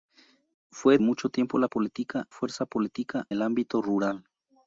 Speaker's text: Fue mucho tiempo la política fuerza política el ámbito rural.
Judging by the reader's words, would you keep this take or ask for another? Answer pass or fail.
pass